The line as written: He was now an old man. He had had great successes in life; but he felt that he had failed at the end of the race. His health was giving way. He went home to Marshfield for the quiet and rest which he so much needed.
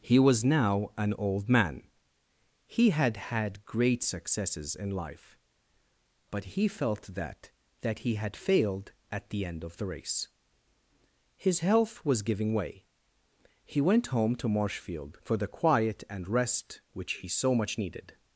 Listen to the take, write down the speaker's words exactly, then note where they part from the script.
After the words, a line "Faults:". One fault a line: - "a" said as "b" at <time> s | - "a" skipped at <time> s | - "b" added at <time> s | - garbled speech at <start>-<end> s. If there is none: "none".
He was now an old man. He had had great successes in life; but he felt that that he had failed at the end of the race. His health was giving way. He went home to Marshfield for the quiet and rest which he so much needed.
Faults:
- "that" added at 7.8 s